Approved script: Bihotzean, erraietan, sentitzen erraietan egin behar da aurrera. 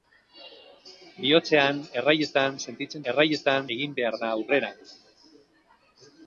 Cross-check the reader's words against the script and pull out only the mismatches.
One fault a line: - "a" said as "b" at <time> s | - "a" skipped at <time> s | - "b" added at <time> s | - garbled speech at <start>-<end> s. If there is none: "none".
none